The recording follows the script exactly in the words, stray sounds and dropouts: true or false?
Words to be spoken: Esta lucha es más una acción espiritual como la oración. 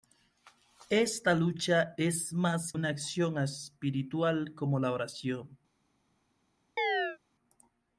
false